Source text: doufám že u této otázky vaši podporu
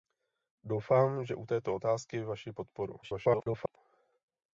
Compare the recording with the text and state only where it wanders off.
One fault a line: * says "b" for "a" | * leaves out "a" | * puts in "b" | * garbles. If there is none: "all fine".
* garbles